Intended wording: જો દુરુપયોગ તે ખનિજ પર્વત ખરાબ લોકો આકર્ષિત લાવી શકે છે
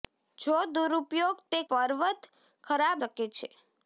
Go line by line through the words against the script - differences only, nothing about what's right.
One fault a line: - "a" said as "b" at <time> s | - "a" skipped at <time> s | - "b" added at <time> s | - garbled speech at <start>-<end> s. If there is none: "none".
- "ખનિજ" skipped at 1.6 s
- "લોકો આકર્ષિત લાવી" skipped at 3.0 s